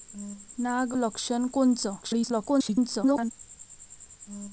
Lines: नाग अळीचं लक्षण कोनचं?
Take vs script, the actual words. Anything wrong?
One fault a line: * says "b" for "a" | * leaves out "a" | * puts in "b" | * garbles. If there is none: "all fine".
* leaves out "अळीचं"
* garbles